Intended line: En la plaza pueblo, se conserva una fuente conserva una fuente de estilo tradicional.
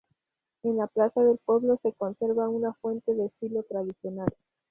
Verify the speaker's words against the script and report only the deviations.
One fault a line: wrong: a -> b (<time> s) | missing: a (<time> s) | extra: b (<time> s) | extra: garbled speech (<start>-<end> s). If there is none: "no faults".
extra: del (1.2 s)
missing: conserva una fuente (3.1 s)